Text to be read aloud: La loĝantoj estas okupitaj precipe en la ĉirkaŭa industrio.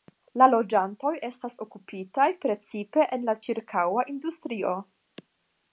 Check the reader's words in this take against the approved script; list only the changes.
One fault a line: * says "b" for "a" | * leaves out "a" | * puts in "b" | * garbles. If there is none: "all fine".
all fine